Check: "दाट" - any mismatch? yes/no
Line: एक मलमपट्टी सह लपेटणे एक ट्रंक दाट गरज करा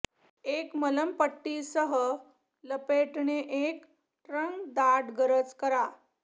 no